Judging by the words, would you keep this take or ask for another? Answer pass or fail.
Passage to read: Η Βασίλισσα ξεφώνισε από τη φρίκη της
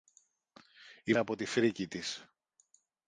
fail